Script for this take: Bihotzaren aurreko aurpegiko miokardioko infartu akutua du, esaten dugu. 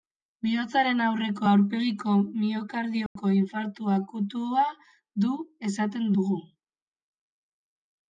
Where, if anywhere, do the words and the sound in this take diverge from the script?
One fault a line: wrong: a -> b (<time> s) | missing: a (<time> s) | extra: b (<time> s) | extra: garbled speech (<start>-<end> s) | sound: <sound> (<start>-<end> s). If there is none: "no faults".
sound: dropout (3.1-3.2 s)